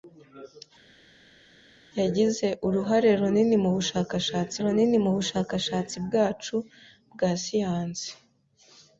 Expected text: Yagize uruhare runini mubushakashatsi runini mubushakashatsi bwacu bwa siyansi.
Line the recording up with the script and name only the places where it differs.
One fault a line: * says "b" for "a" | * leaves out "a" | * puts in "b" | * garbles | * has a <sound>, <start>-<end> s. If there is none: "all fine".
all fine